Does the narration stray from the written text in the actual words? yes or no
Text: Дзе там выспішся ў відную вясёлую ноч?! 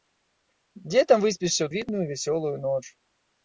no